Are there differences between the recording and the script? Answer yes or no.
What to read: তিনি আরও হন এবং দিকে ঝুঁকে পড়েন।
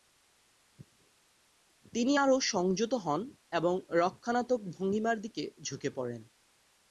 yes